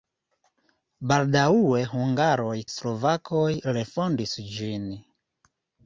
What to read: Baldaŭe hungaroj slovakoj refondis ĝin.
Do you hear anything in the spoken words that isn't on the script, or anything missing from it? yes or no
no